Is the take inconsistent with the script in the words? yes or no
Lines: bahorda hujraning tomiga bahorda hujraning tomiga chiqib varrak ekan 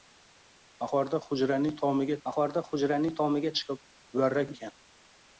no